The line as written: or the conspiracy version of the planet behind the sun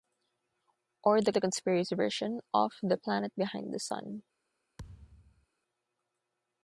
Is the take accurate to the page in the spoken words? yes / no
no